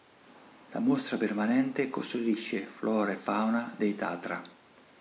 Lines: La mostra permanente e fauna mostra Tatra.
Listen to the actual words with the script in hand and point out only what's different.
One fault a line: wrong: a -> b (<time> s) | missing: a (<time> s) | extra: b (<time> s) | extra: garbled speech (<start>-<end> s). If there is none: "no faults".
extra: custodisce flora (1.9 s)
wrong: mostra -> dei (3.8 s)